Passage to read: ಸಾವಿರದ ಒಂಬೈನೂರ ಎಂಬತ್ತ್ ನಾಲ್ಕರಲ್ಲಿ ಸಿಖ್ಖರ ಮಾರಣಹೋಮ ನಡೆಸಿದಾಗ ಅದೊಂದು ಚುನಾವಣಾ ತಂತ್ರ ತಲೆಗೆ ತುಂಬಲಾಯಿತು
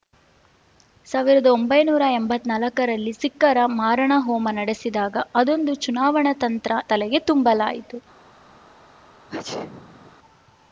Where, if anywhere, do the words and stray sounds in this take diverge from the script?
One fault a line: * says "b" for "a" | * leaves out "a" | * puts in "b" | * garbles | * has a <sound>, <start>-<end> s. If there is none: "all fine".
* has a sneeze, 9.3-10.2 s